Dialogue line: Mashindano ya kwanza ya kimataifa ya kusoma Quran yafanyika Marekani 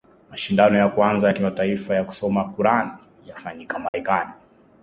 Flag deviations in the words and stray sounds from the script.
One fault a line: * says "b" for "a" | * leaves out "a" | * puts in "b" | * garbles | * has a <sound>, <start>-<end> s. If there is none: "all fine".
* has a dropout, 3.9-3.9 s